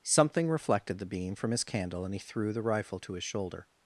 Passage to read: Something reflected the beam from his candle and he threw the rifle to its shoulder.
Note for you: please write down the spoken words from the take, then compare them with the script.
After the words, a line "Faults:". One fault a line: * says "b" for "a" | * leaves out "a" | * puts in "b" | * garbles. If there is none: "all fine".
Something reflected the beam from his candle and he threw the rifle to his shoulder.
Faults:
* says "his" for "its"